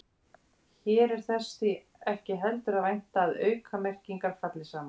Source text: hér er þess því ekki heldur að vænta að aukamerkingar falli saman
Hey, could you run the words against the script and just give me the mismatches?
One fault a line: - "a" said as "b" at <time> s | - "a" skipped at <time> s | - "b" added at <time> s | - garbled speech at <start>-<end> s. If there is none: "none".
none